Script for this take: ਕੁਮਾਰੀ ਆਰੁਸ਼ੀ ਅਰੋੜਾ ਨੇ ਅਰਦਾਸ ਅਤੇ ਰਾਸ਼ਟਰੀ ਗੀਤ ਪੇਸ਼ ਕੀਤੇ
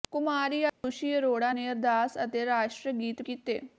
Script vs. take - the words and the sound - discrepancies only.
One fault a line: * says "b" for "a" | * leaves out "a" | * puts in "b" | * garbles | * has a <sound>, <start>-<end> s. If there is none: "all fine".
* has a dropout, 0.7-0.8 s
* leaves out "ਪੇਸ਼"